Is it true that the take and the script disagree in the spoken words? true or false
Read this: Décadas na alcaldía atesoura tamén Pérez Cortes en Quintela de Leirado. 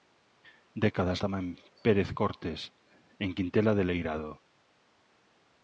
true